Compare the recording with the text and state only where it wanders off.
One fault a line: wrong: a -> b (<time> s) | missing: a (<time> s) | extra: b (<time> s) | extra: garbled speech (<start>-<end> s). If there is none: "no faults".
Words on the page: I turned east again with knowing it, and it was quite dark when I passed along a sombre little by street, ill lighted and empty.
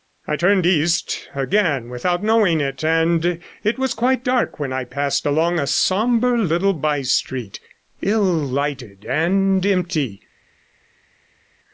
wrong: with -> without (1.9 s)